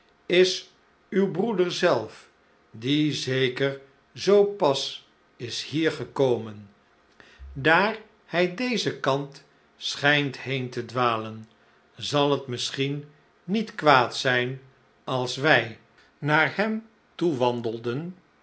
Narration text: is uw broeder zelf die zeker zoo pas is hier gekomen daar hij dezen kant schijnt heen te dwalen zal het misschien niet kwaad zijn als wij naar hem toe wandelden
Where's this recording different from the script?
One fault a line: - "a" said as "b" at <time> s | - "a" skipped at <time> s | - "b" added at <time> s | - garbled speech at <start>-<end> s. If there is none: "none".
none